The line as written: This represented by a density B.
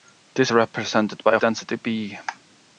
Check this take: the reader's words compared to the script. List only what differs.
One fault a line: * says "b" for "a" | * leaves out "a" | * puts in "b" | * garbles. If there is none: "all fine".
all fine